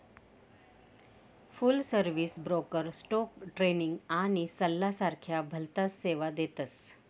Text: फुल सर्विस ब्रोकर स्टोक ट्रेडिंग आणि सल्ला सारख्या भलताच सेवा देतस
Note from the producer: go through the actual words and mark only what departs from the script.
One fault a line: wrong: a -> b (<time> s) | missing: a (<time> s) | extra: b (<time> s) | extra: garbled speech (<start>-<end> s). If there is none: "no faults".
no faults